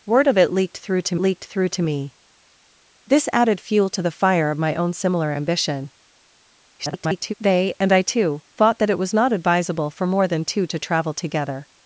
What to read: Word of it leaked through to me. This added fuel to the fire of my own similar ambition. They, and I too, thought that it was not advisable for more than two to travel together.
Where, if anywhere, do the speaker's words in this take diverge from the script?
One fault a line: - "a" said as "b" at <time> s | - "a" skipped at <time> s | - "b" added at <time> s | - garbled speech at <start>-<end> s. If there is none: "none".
- "leaked through to" added at 1.2 s
- garbled speech at 6.8-7.3 s